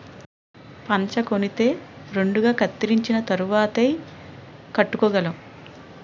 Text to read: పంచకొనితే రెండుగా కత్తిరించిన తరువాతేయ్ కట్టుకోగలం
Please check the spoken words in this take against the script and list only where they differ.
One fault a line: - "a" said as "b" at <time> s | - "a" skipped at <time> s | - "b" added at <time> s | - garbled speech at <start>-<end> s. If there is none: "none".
none